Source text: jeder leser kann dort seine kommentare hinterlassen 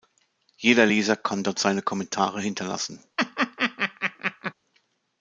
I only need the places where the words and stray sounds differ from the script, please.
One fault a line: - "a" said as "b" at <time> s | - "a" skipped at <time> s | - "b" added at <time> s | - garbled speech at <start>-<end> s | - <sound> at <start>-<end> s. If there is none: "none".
- laugh at 3.2-4.5 s